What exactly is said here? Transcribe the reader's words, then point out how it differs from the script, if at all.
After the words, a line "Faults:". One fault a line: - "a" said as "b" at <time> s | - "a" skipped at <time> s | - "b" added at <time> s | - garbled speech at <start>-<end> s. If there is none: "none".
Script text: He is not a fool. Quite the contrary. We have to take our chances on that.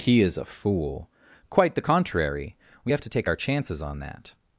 He is a fool. Quite the contrary. We have to take our chances on that.
Faults:
- "not" skipped at 0.3 s